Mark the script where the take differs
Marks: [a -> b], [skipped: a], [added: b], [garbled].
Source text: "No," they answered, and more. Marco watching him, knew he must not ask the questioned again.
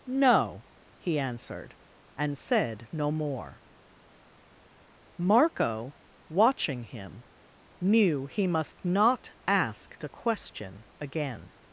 "No," [they -> he] answered, and [added: said no] more. Marco watching him, knew he must not ask the [questioned -> question] again.